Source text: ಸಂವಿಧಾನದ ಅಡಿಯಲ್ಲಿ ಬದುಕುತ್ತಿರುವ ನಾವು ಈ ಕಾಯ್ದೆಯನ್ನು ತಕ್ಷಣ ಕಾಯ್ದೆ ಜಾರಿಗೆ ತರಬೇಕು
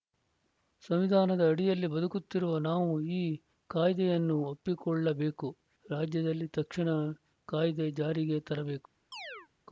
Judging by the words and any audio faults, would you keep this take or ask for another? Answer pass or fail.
fail